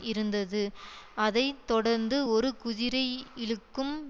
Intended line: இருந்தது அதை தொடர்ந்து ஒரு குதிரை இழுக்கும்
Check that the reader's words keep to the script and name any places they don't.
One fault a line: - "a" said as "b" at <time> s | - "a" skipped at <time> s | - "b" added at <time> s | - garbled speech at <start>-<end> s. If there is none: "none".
none